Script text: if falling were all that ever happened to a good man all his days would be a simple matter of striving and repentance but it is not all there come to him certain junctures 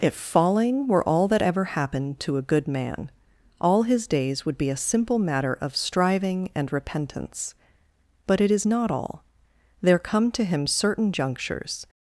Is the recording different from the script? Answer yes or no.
no